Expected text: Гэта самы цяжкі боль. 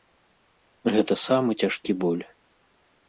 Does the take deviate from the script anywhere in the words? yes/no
no